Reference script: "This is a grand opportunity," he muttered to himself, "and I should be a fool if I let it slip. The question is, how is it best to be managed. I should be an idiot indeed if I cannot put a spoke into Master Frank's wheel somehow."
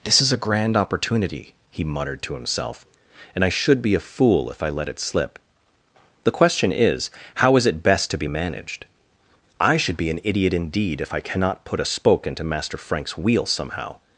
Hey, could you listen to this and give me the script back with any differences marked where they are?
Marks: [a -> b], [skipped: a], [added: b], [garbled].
"This is a grand opportunity," he muttered to himself, "and I should be a fool if I let it slip. The question is, how is it best to be managed. I should be an idiot indeed if I cannot put a spoke into Master Frank's wheel somehow."